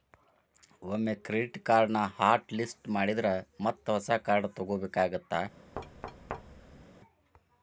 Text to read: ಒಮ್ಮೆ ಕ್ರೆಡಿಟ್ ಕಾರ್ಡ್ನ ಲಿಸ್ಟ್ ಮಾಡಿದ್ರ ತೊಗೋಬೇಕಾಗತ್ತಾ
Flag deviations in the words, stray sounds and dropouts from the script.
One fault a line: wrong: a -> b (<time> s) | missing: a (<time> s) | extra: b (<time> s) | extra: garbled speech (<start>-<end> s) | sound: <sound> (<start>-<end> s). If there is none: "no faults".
extra: ಹಾಟ್ (2.1 s)
extra: ಮತ್ತ ಹೊಸ ಕಾರ್ಡ್ (3.6 s)
sound: thud (5.7-6.8 s)